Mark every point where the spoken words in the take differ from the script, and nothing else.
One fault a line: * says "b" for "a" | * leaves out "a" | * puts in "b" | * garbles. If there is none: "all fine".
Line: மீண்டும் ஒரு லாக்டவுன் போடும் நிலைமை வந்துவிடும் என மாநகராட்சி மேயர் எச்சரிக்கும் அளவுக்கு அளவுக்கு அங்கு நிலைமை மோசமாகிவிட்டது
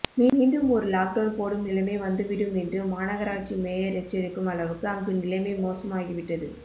* says "என்று" for "என"
* leaves out "அளவுக்கு"